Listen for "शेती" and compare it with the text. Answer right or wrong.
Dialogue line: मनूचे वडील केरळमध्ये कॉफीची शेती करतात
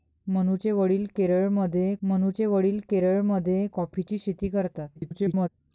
right